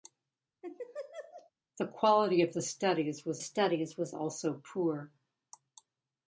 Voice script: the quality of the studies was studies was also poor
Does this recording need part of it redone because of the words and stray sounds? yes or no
yes